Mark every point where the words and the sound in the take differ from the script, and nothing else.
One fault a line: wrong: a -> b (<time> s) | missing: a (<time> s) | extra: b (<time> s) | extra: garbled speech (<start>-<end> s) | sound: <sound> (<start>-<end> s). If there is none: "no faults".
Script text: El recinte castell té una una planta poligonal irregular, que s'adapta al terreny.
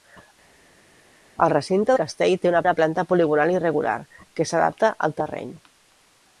no faults